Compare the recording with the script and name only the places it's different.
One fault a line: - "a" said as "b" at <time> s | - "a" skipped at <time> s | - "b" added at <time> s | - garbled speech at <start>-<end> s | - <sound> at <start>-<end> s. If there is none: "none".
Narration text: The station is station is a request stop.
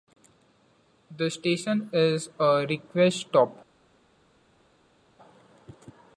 - "station is" skipped at 2.3 s